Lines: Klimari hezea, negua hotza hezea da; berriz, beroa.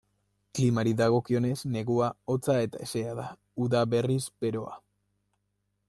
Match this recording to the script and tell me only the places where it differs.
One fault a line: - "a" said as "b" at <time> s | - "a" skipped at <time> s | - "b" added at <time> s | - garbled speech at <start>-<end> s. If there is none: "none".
- "hezea" said as "dagokionez" at 1.0 s
- "eta" added at 2.7 s
- "uda" added at 3.7 s